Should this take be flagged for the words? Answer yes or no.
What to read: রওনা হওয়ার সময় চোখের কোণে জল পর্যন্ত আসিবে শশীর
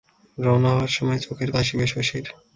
yes